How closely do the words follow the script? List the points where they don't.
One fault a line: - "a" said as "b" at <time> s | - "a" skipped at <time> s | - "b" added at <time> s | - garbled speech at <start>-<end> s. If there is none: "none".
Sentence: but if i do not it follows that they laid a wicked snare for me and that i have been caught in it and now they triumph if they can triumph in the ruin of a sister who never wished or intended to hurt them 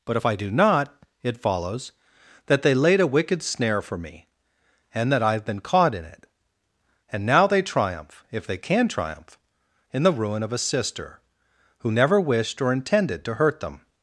none